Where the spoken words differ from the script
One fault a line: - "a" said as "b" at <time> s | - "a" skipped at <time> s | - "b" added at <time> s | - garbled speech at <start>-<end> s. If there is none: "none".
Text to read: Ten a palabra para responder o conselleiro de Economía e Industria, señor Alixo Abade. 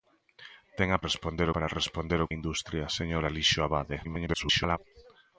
- "palabra" said as "responder" at 1.1 s
- "conselleiro de Economía" skipped at 2.3 s
- garbled speech at 4.0-4.8 s